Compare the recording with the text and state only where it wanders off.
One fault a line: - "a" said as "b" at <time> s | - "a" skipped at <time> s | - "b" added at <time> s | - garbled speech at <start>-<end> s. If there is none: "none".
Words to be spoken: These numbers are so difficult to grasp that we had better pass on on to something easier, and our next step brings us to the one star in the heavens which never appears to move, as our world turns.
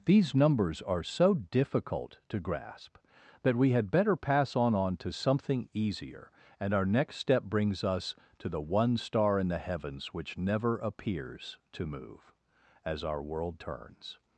none